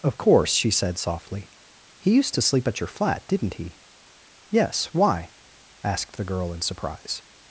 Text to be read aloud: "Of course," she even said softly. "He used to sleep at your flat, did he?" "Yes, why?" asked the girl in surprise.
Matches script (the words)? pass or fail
fail